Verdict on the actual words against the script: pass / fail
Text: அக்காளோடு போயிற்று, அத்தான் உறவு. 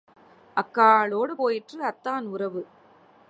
pass